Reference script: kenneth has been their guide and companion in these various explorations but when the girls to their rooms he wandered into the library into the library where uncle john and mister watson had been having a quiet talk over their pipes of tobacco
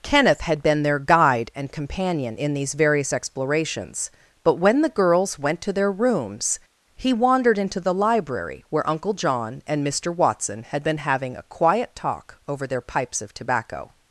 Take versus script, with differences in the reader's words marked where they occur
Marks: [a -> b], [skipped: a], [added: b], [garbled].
kenneth [has -> had] been their guide and companion in these various explorations but when the girls [added: went] to their rooms he wandered into the library [skipped: into the library] where uncle john and mister watson had been having a quiet talk over their pipes of tobacco